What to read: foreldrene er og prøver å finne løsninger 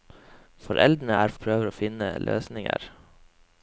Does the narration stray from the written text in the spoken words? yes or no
no